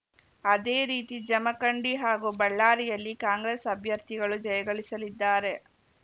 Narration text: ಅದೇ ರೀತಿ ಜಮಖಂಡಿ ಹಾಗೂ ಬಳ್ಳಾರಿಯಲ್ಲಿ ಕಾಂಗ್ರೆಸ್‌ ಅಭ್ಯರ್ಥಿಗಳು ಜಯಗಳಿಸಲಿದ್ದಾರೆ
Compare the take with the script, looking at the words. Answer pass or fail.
pass